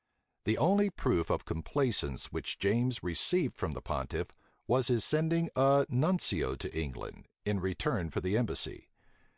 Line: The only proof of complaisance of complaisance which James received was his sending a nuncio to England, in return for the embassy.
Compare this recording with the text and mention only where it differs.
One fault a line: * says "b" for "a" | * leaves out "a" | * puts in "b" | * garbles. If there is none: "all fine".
* leaves out "of complaisance"
* puts in "from the pontiff"